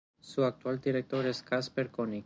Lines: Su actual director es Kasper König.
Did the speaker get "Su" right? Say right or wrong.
right